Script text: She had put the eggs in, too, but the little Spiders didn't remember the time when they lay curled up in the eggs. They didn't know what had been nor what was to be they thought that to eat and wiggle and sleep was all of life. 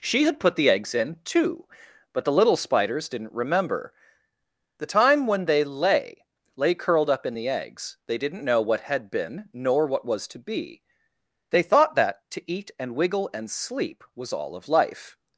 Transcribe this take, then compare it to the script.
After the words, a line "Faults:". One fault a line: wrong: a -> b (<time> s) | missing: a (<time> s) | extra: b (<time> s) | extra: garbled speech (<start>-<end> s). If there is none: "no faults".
She had put the eggs in, too, but the little Spiders didn't remember the time when they lay lay curled up in the eggs. They didn't know what had been nor what was to be they thought that to eat and wiggle and sleep was all of life.
Faults:
extra: lay (6.5 s)